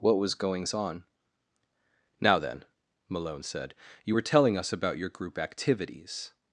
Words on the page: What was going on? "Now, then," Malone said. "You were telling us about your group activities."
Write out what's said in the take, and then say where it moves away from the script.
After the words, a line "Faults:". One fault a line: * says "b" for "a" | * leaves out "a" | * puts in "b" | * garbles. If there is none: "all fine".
What was goings on? "Now, then," Malone said. "You were telling us about your group activities."
Faults:
* says "goings" for "going"